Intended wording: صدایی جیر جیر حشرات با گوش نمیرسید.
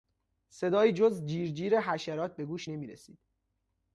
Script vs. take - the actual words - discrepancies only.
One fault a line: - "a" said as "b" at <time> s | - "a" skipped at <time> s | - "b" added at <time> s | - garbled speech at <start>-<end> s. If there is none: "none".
- "جز" added at 0.9 s
- "با" said as "به" at 2.4 s